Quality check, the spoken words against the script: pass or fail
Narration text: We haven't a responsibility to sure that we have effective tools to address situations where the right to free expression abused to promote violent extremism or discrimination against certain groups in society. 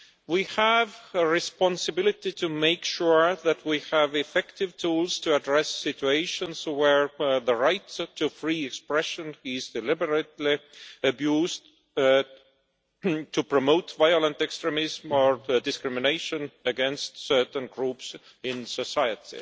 fail